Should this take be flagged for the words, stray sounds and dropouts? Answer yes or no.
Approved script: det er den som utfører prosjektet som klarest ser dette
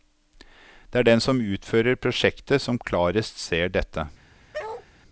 yes